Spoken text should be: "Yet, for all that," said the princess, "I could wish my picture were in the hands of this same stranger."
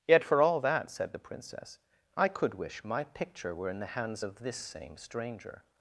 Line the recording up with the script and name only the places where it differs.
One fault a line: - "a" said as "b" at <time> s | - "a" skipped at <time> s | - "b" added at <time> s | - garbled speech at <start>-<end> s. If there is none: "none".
none